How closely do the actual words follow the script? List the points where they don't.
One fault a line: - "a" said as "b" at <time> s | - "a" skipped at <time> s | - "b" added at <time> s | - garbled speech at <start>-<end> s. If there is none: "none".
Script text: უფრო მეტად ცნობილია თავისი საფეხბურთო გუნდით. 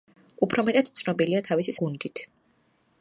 - "საფეხბურთო" skipped at 1.8 s